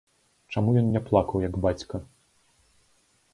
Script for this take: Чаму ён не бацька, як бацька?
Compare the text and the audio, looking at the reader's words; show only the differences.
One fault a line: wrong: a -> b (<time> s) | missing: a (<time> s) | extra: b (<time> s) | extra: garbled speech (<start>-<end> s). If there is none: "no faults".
wrong: бацька -> плакаў (1.1 s)